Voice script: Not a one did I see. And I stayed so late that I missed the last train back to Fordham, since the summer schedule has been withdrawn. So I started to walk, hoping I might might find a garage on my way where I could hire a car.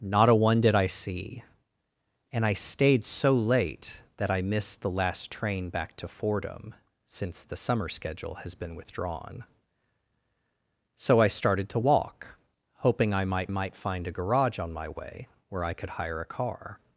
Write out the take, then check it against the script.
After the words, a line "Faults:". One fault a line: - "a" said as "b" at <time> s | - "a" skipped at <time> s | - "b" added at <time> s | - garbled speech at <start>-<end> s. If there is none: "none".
Not a one did I see. And I stayed so late that I missed the last train back to Fordham, since the summer schedule has been withdrawn. So I started to walk, hoping I might might find a garage on my way where I could hire a car.
Faults:
none